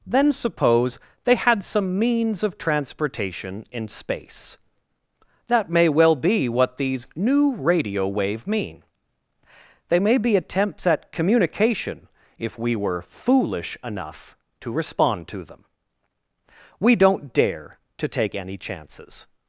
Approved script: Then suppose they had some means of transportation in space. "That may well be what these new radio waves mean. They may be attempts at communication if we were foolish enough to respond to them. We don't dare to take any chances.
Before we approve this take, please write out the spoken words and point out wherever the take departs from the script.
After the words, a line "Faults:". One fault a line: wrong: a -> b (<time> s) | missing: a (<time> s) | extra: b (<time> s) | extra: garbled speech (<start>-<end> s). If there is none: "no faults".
Then suppose they had some means of transportation in space. "That may well be what these new radio wave mean. They may be attempts at communication if we were foolish enough to respond to them. We don't dare to take any chances.
Faults:
wrong: waves -> wave (8.1 s)